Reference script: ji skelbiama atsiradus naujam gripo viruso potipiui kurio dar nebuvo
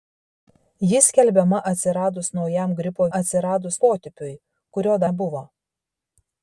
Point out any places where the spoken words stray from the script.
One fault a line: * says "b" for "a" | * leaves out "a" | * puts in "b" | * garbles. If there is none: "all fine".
* says "atsiradus" for "viruso"
* leaves out "dar"